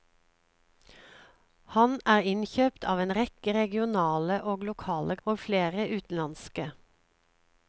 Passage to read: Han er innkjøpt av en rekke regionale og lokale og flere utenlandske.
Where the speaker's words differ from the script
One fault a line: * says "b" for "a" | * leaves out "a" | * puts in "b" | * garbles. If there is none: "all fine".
all fine